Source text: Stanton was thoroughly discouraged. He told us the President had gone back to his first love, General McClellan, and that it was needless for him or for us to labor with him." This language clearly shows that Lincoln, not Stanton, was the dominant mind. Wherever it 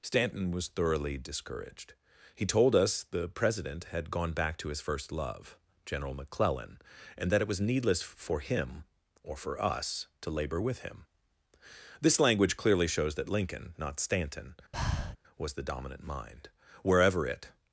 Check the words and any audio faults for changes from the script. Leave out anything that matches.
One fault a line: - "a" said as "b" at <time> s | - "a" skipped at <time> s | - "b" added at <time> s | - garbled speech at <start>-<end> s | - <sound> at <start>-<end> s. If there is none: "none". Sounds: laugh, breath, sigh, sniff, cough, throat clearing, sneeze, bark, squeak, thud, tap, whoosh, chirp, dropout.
- breath at 14.7-15.2 s